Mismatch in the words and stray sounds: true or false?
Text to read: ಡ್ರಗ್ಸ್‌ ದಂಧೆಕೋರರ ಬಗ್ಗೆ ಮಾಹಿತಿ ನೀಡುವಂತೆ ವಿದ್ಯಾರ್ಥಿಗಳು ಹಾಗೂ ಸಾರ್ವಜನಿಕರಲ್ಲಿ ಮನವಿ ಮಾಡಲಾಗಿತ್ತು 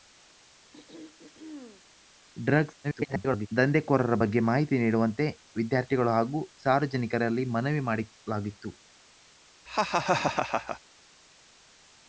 true